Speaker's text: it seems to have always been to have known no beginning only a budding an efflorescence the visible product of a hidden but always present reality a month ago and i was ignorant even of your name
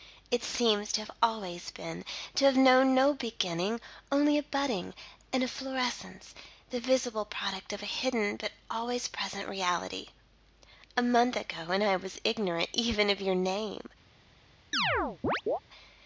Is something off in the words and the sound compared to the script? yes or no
yes